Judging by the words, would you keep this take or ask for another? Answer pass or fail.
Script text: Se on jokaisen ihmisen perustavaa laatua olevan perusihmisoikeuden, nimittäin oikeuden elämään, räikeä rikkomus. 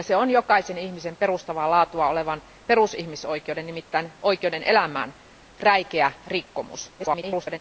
fail